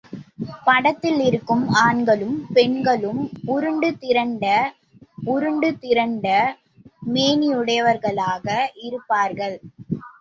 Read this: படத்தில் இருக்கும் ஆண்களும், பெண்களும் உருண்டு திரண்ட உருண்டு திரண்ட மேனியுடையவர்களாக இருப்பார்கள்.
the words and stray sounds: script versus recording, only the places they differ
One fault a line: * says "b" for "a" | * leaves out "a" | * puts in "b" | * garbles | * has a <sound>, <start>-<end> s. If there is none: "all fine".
all fine